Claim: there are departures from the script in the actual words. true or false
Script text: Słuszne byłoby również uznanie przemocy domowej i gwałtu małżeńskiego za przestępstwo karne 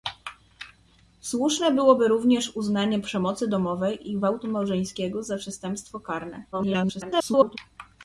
true